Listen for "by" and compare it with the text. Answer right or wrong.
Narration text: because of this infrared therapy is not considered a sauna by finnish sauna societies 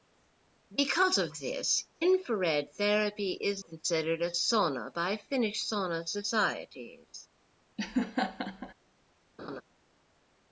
right